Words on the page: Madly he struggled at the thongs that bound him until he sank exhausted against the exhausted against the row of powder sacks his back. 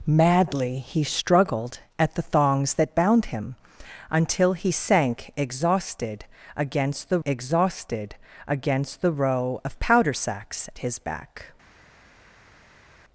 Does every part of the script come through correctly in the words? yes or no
yes